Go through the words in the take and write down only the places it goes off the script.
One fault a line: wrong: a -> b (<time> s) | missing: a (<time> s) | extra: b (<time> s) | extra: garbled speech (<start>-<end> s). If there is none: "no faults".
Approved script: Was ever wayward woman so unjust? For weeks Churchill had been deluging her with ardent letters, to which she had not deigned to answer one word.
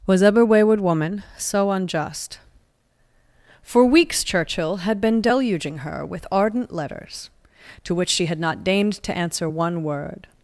no faults